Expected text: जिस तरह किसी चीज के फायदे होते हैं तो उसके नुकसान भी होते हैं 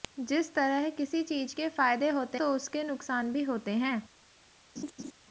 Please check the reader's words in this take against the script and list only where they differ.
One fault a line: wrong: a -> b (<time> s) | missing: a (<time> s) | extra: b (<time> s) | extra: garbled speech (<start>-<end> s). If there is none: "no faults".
missing: हैं (2.4 s)